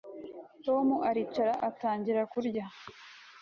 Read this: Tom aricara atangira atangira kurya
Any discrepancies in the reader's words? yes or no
yes